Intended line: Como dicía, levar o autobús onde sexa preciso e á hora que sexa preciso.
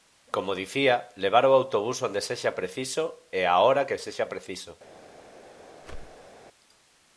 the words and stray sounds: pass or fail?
fail